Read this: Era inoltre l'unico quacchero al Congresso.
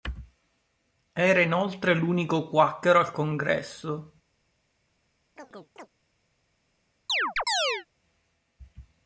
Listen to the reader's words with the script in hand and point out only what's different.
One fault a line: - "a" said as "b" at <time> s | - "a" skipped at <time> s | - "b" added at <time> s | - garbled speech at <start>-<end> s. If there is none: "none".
none